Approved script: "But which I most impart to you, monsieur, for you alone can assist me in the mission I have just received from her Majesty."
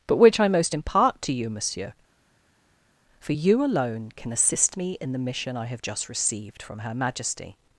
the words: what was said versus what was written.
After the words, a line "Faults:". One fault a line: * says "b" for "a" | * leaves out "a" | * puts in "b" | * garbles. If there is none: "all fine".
"But which I most impart to you, monsieur, for you alone can assist me in the mission I have just received from her Majesty."
Faults:
all fine